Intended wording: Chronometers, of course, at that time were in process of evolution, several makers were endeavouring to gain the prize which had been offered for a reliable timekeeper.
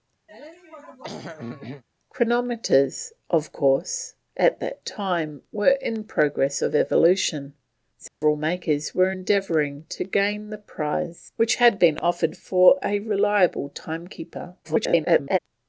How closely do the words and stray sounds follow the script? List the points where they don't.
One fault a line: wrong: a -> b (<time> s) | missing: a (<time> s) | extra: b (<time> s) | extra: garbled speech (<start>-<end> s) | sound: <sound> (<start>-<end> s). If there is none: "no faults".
sound: throat clearing (0.3-1.8 s)
sound: dropout (8.1-8.2 s)
extra: garbled speech (14.6-15.4 s)